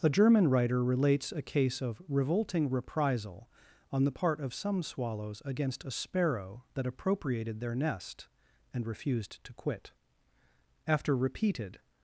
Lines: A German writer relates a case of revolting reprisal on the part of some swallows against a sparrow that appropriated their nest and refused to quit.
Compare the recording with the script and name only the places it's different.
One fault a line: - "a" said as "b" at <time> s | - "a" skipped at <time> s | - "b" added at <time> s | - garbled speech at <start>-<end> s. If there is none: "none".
- "After repeated" added at 10.9 s